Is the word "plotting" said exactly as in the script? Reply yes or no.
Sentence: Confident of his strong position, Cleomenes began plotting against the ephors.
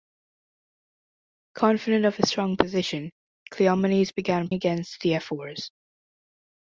no